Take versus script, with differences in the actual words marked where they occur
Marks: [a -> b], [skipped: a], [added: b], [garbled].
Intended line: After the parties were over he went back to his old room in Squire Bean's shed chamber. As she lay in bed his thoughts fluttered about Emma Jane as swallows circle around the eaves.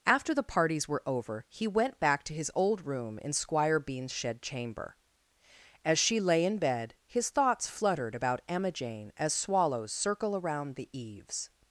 After the parties were over he went back to his old room in Squire Bean's shed chamber. As she lay in bed his thoughts fluttered about Emma Jane as swallows circle around the eaves.